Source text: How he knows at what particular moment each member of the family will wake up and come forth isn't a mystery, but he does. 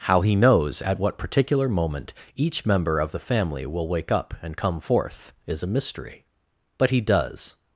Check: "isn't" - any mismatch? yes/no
yes